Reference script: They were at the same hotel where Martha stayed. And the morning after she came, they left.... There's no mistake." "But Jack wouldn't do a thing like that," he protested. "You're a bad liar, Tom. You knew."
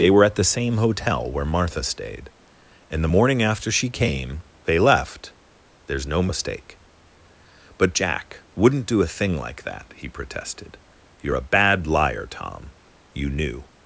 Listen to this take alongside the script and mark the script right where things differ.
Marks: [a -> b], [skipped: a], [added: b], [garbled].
They were at the same hotel where Martha stayed. And the morning after she came, they left.... There's no mistake." "But Jack wouldn't do a thing like that," he protested. "You're a bad liar, Tom. You knew."